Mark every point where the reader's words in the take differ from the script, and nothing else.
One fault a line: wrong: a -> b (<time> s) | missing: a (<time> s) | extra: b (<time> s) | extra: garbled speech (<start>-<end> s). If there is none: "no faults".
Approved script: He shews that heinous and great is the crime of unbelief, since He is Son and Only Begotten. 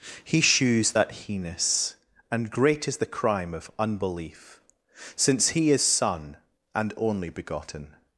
no faults